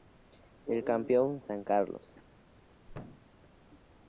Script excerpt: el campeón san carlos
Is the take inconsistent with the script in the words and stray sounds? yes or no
yes